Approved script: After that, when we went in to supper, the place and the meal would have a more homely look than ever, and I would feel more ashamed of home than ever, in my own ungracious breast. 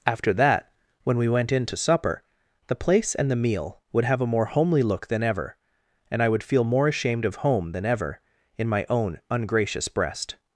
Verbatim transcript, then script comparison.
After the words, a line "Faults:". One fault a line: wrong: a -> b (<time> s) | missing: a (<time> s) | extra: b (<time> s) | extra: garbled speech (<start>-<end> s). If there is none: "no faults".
After that, when we went in to supper, the place and the meal would have a more homely look than ever, and I would feel more ashamed of home than ever, in my own ungracious breast.
Faults:
no faults